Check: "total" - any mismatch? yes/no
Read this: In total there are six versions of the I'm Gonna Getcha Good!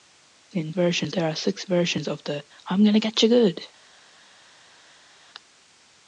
yes